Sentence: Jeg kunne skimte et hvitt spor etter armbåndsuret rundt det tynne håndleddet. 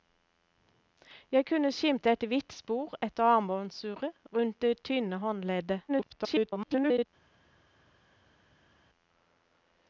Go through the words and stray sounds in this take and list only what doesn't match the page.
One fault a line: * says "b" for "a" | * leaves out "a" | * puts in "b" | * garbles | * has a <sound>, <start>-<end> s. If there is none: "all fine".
* garbles